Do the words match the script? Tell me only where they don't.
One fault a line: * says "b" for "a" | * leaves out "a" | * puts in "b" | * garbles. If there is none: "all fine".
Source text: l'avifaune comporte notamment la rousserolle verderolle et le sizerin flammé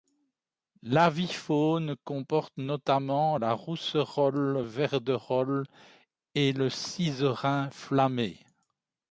all fine